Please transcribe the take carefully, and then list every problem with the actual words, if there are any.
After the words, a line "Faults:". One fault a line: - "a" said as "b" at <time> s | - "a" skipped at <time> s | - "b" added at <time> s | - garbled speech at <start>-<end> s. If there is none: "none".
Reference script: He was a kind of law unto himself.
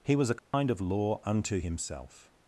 He was a kind of law unto himself.
Faults:
none